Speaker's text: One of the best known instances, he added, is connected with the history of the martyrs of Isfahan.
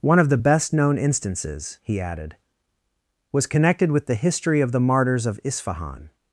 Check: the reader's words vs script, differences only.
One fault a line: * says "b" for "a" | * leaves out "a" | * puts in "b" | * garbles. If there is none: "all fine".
* says "was" for "is"